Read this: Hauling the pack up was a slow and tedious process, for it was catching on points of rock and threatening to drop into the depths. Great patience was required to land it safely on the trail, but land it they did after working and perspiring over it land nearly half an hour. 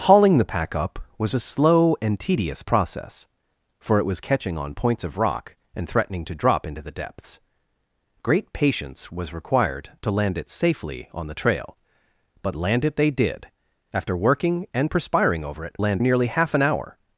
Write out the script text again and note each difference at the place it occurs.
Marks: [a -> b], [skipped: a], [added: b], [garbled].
Hauling the pack up was a slow and tedious process, for it was catching on points of rock and threatening to drop into the depths. Great patience was required to land it safely on the trail, but land it they did after working and perspiring over it land nearly half an hour.